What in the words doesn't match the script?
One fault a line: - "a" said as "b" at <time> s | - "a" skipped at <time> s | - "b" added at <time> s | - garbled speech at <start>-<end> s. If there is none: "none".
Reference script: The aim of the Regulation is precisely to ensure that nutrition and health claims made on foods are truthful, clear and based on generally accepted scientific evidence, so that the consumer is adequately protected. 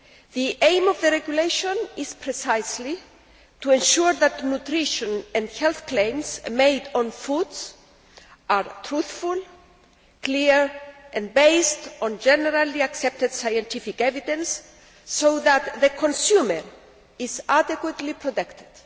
none